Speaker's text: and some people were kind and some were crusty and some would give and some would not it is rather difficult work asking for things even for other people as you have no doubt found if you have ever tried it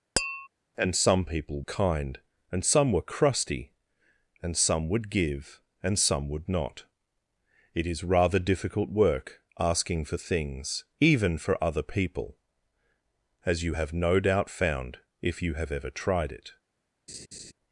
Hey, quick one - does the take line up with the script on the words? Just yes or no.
no